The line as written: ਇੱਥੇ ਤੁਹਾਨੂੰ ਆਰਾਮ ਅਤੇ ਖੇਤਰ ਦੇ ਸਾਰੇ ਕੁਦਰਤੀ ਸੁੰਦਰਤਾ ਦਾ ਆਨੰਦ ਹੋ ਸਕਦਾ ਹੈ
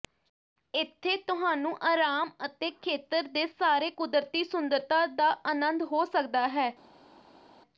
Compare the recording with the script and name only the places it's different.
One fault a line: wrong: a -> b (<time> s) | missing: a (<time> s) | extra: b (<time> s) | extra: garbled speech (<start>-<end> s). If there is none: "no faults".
no faults